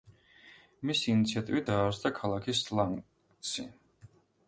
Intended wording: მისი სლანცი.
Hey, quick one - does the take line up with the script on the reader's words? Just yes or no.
no